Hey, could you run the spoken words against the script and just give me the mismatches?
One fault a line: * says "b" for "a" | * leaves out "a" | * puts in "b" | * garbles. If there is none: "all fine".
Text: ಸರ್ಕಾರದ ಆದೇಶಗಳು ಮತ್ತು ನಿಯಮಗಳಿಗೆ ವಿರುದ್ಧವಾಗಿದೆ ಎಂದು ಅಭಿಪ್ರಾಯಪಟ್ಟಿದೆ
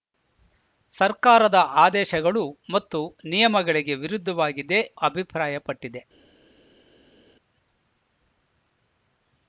* leaves out "ಎಂದು"